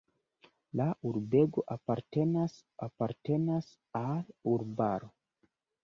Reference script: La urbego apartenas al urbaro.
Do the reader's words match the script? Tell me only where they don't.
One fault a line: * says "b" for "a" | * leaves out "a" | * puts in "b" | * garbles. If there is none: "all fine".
* puts in "apartenas"